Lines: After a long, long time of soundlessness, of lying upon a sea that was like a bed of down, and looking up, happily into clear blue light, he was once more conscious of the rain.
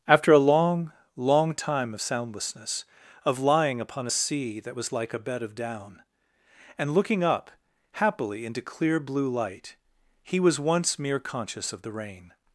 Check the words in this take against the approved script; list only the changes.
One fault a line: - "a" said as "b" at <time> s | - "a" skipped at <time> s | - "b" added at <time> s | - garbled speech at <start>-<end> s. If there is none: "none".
- "more" said as "mere" at 11.0 s